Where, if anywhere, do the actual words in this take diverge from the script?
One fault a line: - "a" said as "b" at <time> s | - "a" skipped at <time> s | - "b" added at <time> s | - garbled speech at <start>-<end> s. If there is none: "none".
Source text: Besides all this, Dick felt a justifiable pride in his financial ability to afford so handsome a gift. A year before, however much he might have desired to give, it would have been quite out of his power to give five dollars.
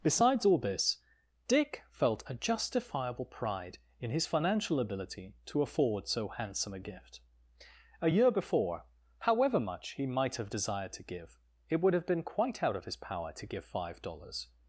none